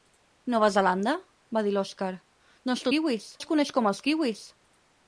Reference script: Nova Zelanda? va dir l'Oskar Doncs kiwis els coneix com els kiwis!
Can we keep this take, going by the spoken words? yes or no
yes